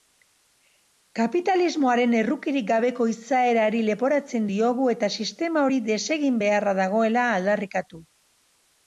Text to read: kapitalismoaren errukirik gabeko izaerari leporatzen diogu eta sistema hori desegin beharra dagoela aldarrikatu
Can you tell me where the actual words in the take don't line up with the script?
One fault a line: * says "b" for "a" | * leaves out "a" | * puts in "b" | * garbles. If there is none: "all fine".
all fine